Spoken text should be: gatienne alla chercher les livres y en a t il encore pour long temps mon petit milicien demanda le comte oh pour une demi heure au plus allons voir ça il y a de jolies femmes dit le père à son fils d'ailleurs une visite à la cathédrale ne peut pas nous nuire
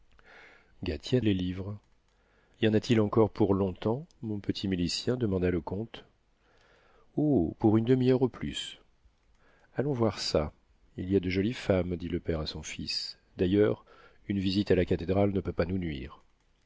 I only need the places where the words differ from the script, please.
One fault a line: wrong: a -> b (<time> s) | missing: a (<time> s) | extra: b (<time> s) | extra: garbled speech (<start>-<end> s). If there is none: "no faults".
missing: alla chercher (1.2 s)